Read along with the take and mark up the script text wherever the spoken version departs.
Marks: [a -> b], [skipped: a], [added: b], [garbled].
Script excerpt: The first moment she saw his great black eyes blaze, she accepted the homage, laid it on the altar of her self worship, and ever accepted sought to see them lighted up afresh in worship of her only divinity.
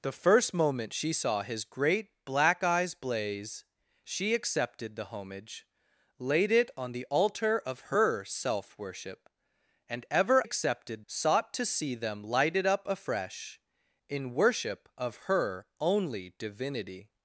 The first moment she saw his great black eyes blaze, she accepted the homage, laid it on the altar of her self worship, and ever accepted sought to see them lighted up afresh in worship of her only divinity.